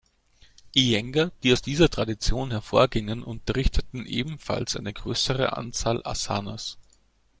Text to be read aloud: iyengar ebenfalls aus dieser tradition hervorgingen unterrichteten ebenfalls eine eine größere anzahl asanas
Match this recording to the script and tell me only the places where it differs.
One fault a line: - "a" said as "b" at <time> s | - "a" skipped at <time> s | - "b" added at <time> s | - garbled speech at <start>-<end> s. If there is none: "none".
- "ebenfalls" said as "die" at 1.4 s
- "eine" skipped at 4.9 s